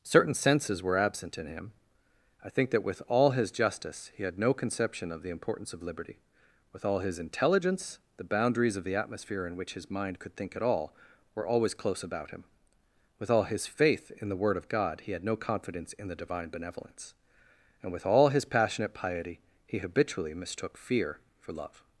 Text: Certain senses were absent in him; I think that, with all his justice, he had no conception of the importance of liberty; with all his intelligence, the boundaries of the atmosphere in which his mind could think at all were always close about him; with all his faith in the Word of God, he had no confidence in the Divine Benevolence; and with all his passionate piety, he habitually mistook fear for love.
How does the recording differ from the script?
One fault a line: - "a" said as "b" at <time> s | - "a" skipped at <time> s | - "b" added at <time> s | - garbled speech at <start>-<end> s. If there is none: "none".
none